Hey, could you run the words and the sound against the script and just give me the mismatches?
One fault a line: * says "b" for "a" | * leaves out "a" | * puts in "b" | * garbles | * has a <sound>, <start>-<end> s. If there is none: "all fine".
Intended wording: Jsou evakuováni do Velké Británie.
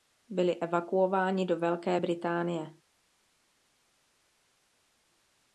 * says "Byli" for "Jsou"